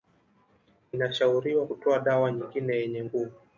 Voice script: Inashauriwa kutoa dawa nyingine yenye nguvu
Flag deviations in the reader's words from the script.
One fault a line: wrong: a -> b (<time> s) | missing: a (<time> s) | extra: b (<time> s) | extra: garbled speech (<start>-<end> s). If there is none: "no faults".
no faults